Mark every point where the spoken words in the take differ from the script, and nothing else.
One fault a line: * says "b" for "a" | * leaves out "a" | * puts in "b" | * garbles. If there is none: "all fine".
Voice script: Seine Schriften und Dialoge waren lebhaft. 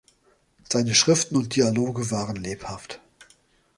all fine